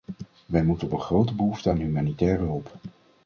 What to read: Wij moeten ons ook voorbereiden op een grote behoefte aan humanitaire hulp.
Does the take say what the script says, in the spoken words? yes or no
no